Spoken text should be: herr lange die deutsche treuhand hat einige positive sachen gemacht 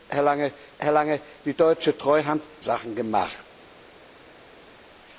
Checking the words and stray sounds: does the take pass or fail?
fail